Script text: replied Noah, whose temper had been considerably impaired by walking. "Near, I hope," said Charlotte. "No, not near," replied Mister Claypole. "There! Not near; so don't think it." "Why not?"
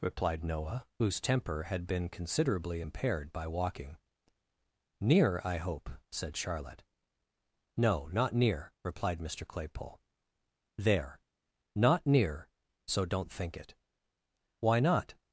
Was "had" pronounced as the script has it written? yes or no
yes